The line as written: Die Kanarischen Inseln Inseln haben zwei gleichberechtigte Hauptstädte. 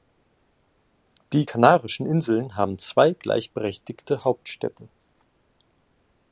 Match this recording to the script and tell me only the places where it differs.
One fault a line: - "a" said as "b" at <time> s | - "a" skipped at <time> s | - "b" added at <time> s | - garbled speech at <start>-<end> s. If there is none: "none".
- "Inseln" skipped at 2.5 s